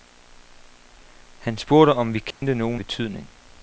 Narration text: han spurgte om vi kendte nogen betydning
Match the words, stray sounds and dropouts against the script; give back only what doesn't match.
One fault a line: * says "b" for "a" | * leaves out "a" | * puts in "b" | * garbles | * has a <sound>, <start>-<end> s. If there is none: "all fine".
* has a dropout, 2.3-2.4 s